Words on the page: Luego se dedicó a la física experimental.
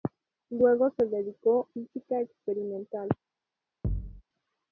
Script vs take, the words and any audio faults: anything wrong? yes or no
yes